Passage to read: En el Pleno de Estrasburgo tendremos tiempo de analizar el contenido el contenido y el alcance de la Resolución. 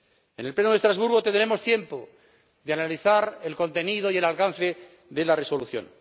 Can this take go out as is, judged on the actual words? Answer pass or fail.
fail